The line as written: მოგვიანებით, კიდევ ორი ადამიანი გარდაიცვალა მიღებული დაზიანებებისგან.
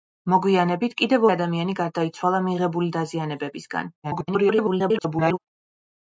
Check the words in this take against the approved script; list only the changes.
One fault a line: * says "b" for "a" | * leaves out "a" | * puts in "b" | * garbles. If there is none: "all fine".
* leaves out "ორი"
* garbles